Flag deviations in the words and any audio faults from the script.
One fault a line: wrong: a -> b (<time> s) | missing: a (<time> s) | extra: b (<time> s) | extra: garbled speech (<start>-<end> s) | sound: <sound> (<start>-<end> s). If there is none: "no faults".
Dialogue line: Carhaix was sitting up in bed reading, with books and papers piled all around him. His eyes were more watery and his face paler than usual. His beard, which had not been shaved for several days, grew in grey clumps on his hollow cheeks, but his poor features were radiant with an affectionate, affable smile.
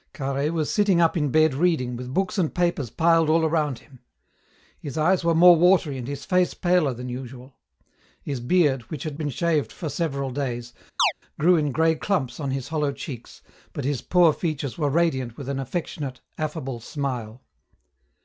missing: not (9.2 s)
sound: chirp (11.0-11.1 s)